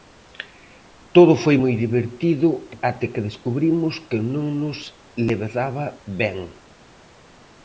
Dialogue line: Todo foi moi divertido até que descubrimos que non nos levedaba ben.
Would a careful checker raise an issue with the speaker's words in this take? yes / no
no